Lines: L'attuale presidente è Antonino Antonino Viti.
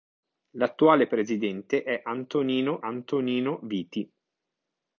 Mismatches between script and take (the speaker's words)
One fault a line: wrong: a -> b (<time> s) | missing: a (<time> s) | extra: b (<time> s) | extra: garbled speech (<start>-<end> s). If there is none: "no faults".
no faults